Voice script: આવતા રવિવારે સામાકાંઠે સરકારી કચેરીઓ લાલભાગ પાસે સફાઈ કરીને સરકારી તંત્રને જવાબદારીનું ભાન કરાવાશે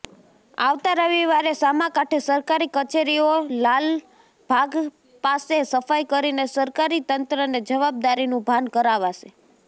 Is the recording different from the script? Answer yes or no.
no